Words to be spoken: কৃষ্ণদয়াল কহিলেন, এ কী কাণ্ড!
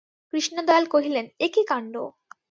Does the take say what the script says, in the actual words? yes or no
yes